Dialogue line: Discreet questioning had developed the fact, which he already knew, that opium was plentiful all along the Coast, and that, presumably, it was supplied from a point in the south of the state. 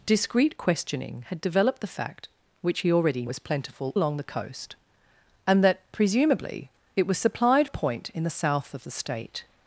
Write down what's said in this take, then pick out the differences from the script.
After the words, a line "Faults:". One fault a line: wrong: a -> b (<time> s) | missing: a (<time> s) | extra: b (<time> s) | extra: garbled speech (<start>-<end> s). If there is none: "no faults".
Discreet questioning had developed the fact, which he already was plentiful along the Coast, and that, presumably, it was supplied a point in the south of the state.
Faults:
missing: knew that opium (3.2 s)
missing: all (4.0 s)
missing: from (7.7 s)